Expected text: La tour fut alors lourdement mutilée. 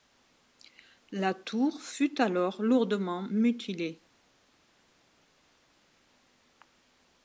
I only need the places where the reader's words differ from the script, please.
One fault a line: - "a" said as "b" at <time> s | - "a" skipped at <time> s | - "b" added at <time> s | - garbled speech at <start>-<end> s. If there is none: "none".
none